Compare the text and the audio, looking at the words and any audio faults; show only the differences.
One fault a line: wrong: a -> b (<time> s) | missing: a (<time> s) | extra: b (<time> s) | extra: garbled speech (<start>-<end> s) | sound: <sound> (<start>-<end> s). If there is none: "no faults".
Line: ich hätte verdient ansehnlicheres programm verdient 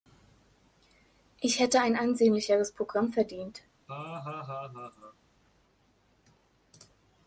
wrong: verdient -> ein (1.8 s)
sound: laugh (3.9-5.2 s)